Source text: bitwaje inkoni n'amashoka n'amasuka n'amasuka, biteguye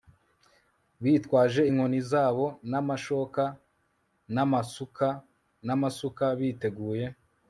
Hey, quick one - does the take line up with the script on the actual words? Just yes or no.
no